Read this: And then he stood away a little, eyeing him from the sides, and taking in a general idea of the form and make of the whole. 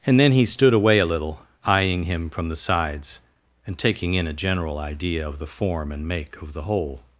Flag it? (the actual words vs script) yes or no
no